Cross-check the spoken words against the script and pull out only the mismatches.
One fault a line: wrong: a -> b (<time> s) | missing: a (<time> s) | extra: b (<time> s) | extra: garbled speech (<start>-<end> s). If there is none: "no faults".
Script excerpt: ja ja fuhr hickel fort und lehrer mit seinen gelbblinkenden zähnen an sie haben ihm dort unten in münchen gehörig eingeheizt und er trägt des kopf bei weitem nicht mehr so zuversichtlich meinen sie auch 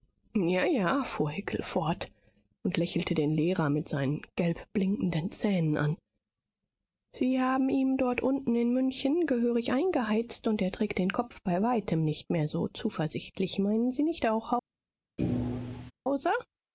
extra: lächelte den (2.8 s)
wrong: des -> den (11.0 s)
extra: nicht (14.0 s)